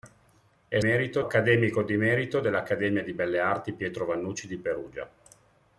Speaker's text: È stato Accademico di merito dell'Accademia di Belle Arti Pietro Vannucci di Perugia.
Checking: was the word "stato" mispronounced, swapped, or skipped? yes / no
yes